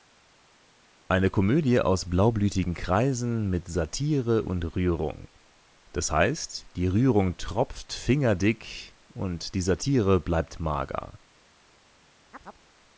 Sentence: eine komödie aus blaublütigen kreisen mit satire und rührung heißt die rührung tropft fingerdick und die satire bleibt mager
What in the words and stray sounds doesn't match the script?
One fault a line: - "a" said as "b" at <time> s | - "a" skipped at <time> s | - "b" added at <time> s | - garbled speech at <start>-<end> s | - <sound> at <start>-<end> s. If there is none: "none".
- "das" added at 5.9 s
- chirp at 12.3-12.7 s